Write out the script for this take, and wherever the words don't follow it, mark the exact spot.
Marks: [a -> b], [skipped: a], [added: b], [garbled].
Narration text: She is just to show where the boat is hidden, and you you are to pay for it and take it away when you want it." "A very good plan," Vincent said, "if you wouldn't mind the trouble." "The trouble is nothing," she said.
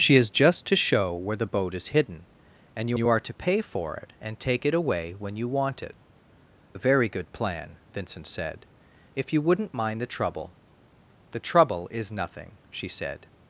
She is just to show where the boat is hidden, and you you are to pay for it and take it away when you want it." "A very good plan," Vincent said, "if you wouldn't mind the trouble." "The trouble is nothing," she said.